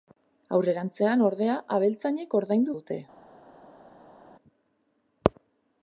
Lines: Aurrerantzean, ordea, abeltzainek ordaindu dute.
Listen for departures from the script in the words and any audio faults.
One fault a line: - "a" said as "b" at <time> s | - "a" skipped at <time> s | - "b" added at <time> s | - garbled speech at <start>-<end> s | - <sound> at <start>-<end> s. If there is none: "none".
none